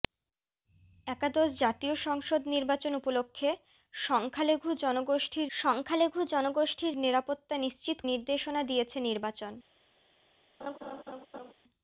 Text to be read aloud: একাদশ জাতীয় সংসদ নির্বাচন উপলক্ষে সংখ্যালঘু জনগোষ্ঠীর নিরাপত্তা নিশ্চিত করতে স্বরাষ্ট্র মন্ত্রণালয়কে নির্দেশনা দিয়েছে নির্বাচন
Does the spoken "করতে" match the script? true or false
false